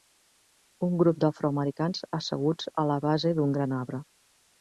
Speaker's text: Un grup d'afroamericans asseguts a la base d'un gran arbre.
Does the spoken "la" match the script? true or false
true